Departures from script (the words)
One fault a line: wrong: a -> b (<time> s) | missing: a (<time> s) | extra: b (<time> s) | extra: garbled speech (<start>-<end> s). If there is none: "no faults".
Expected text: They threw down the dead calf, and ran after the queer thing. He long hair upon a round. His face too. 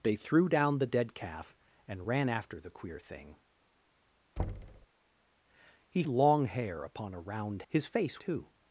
no faults